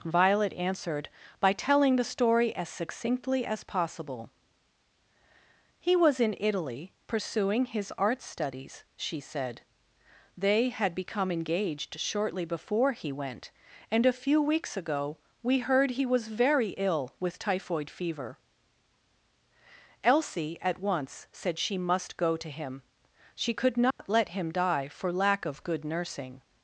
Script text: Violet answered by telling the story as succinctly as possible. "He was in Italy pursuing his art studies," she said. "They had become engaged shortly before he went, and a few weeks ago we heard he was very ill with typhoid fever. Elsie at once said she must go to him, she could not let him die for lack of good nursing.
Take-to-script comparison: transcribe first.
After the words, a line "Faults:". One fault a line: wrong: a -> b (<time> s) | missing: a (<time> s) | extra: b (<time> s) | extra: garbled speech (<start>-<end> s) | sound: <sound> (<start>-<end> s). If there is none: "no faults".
Violet answered by telling the story as succinctly as possible. "He was in Italy pursuing his art studies," she said. "They had become engaged shortly before he went, and a few weeks ago we heard he was very ill with typhoid fever. Elsie at once said she must go to him, she could not let him die for lack of good nursing.
Faults:
sound: dropout (23.9-24.0 s)